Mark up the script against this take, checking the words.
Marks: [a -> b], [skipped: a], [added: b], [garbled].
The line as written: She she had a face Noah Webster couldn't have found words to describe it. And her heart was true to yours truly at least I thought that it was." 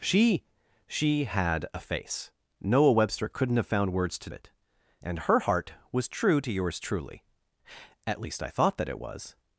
She she had a face Noah Webster couldn't have found words to [skipped: describe] it. And her heart was true to yours truly at least I thought that it was."